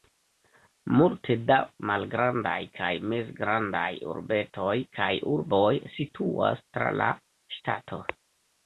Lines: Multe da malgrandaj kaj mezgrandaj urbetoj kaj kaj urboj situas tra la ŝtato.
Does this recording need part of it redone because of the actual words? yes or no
yes